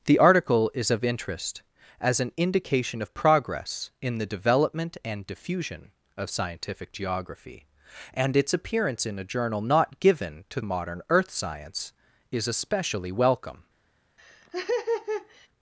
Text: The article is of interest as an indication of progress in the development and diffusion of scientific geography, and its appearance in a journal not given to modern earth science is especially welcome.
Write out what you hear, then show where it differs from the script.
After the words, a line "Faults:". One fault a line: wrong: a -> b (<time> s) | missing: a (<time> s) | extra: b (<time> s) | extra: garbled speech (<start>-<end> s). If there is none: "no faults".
The article is of interest as an indication of progress in the development and diffusion of scientific geography, and its appearance in a journal not given to modern earth science is especially welcome.
Faults:
no faults